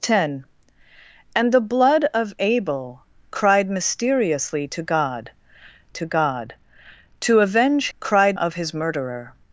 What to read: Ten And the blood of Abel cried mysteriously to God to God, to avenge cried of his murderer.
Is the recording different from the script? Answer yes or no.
no